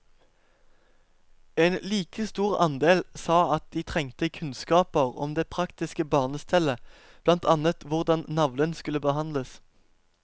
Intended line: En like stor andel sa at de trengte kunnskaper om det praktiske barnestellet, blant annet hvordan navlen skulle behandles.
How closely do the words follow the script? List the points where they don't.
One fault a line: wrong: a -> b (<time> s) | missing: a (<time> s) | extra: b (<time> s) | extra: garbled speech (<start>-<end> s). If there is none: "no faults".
no faults